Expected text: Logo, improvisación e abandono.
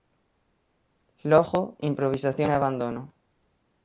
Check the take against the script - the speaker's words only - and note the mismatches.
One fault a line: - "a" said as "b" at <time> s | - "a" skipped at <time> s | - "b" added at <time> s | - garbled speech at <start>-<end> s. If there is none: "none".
none